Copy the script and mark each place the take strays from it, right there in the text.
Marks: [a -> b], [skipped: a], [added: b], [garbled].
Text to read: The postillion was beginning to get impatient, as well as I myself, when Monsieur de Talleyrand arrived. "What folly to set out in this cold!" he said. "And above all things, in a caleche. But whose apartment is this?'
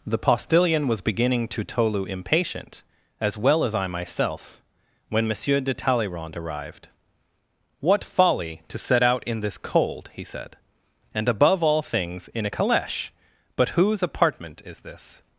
The postillion was beginning to [get -> tolu] impatient, as well as I myself, when Monsieur de Talleyrand arrived. "What folly to set out in this cold!" he said. "And above all things, in a caleche. But whose apartment is this?'